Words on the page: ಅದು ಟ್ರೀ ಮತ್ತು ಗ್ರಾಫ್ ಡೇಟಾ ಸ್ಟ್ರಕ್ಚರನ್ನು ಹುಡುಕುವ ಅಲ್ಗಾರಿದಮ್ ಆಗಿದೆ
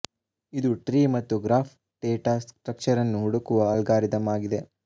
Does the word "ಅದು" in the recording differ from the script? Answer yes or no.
yes